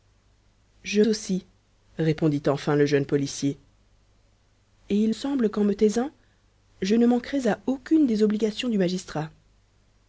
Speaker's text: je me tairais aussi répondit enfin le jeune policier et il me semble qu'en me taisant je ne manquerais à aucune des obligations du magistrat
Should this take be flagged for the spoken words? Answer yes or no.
yes